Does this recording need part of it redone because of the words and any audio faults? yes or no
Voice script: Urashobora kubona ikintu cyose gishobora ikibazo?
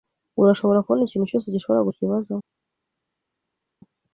no